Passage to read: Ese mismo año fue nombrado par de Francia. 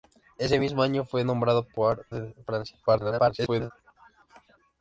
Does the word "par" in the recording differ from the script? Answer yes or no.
yes